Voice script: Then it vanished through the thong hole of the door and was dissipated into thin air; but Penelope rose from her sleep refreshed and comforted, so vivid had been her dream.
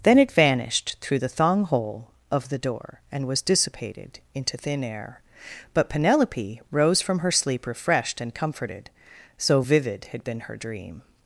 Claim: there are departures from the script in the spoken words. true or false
false